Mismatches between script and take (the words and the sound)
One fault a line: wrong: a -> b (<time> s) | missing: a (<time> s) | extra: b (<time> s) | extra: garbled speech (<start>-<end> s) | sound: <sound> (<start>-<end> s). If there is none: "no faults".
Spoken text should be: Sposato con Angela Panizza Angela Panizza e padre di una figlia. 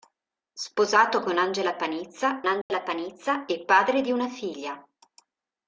sound: dropout (2.6-2.7 s)